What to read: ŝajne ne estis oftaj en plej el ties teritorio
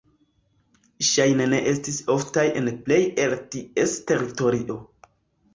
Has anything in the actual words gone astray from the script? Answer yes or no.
no